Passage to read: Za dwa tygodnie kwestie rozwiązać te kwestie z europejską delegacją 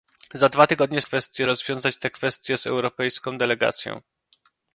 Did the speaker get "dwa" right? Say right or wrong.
right